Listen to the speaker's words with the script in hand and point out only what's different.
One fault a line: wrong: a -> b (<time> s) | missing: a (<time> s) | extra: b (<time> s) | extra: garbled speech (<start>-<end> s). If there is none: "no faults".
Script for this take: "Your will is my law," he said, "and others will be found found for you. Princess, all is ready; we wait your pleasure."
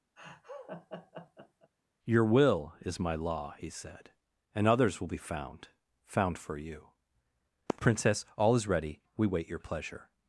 no faults